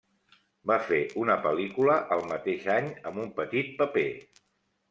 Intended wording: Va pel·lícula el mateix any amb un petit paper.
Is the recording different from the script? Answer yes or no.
yes